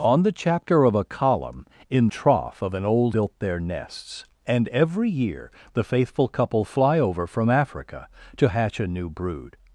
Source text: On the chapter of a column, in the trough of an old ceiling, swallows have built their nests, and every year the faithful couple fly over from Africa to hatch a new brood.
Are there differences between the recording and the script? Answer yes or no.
yes